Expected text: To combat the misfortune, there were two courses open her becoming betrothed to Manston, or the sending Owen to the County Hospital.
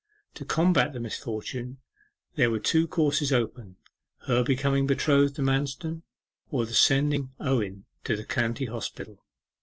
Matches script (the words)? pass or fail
pass